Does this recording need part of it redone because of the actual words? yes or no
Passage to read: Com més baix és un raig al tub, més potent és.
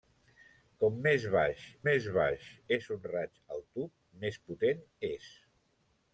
yes